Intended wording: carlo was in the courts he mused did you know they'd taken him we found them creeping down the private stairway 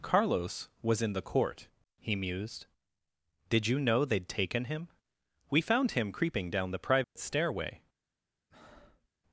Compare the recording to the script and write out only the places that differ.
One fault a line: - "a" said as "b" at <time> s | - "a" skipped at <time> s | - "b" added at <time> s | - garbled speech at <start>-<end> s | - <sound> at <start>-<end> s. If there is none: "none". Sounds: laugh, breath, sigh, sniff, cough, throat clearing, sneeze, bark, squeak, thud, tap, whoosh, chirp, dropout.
- "carlo" said as "carlos" at 0.0 s
- "courts" said as "court" at 1.2 s
- "them" said as "him" at 5.9 s
- dropout at 7.0-7.2 s
- breath at 8.5-9.1 s